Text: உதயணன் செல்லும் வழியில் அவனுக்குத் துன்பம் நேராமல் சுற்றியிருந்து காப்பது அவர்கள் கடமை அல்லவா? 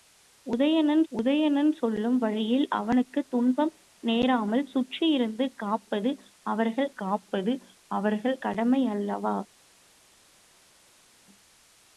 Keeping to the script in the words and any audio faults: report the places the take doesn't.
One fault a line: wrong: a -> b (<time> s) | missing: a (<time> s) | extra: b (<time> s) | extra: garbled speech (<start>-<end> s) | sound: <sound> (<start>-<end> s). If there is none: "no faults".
extra: உதயணன் (1.1 s)
extra: காப்பது அவர்கள் (6.9 s)